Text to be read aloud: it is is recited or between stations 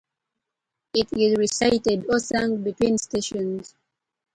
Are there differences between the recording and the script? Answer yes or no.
yes